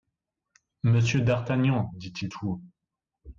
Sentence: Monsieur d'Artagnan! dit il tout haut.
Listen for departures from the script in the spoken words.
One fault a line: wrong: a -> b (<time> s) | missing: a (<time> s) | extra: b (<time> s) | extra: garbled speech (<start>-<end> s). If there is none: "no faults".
no faults